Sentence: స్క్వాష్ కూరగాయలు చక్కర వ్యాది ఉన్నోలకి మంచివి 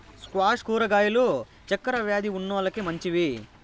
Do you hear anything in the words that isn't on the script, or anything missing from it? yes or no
no